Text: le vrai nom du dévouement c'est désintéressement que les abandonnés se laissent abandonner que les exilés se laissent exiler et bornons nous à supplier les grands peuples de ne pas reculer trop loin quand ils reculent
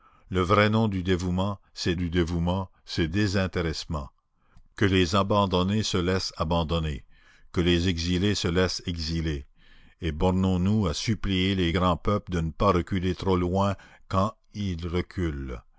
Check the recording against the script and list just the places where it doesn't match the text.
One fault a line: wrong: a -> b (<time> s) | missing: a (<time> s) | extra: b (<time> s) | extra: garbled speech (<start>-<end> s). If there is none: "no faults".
extra: du dévouement c'est (1.9 s)